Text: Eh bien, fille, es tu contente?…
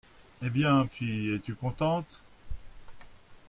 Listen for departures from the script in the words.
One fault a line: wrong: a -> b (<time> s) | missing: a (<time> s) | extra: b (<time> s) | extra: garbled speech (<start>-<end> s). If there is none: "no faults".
no faults